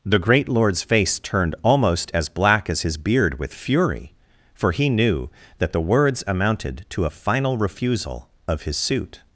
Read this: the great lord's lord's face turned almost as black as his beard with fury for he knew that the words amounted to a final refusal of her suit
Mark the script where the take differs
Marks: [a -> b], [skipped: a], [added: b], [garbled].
the great lord's [skipped: lord's] face turned almost as black as his beard with fury for he knew that the words amounted to a final refusal of [her -> his] suit